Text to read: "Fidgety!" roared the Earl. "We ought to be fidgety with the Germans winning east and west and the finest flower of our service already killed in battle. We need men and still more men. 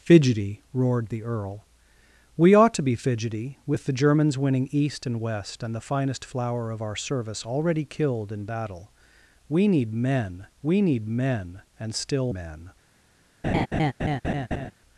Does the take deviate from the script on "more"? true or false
true